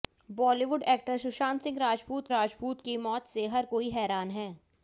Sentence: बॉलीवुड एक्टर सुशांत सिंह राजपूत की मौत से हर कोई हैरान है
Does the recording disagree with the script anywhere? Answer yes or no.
yes